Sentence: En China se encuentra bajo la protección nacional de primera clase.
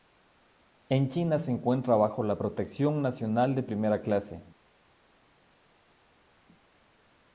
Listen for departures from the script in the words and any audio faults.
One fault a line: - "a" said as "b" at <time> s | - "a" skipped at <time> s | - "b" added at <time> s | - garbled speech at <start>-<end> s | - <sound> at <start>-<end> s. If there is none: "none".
none